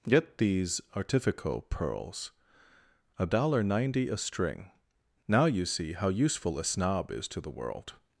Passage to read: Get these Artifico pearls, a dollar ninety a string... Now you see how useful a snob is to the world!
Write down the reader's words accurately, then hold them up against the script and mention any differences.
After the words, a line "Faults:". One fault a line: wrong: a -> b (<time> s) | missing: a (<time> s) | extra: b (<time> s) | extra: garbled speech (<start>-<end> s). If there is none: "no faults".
Get these Artifico pearls, a dollar ninety a string... Now you see how useful a snob is to the world!
Faults:
no faults